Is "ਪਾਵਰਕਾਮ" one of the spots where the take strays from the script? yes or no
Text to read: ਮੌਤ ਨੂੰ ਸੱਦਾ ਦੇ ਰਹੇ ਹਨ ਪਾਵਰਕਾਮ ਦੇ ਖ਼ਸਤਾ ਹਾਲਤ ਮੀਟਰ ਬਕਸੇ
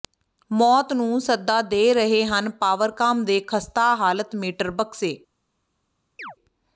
no